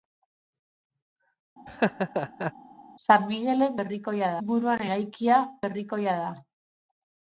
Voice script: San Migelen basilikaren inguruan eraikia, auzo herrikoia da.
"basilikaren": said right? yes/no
no